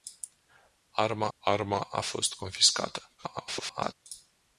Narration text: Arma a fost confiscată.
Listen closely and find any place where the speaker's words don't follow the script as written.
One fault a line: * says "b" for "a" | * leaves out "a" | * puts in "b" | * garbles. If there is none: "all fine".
* puts in "arma"
* garbles